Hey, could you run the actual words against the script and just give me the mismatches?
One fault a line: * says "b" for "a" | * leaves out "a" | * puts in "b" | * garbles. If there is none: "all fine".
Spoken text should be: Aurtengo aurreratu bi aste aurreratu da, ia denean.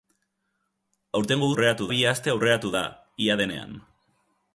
all fine